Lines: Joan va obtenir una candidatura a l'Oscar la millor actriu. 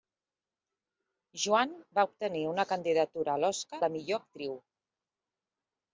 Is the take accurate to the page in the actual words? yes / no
yes